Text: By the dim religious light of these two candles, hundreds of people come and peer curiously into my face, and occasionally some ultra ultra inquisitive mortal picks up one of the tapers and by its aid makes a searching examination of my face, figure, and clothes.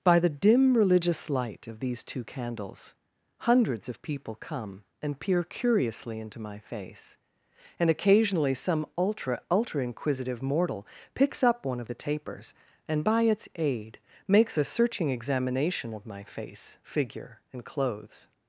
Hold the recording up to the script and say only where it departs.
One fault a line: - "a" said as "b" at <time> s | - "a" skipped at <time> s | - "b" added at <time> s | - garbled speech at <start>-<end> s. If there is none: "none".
none